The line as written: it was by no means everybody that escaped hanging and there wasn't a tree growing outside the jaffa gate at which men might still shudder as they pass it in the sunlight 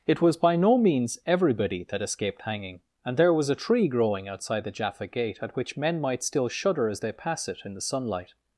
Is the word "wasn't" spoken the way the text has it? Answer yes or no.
no